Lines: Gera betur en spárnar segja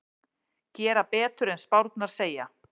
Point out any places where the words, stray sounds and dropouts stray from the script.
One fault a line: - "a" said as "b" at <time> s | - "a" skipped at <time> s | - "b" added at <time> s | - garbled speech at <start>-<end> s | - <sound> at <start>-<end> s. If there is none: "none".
none